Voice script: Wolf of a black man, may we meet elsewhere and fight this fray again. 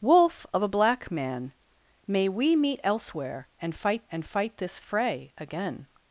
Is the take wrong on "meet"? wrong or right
right